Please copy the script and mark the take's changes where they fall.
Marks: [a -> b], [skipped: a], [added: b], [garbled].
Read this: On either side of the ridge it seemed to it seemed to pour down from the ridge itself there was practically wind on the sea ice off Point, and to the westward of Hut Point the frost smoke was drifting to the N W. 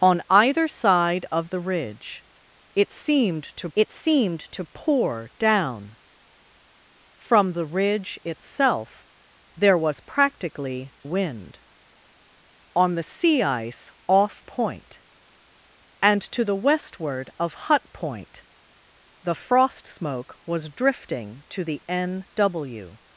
On either side of the ridge it seemed to it seemed to pour down from the ridge itself there was practically wind on the sea ice off Point, and to the westward of Hut Point the frost smoke was drifting to the N W.